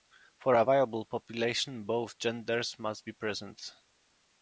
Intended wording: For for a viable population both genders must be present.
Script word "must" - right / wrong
right